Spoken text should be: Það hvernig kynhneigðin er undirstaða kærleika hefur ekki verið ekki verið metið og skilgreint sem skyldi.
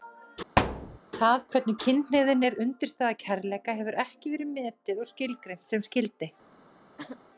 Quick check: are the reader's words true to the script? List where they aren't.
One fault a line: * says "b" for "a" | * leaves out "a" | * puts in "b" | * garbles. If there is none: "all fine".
* leaves out "ekki verið"